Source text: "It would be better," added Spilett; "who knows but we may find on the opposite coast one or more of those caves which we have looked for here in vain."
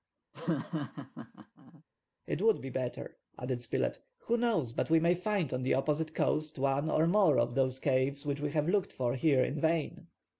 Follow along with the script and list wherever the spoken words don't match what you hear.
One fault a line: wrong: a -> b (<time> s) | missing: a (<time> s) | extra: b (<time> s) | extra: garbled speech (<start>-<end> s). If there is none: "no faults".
no faults